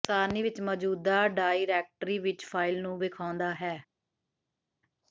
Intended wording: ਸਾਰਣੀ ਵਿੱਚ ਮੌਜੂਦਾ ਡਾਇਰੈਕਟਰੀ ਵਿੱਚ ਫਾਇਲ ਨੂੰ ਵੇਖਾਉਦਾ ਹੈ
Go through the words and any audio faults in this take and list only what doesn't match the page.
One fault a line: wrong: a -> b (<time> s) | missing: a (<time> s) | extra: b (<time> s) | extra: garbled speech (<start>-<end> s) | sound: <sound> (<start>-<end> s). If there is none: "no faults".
no faults